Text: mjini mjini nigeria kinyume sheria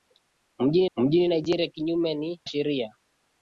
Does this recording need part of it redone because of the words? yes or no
no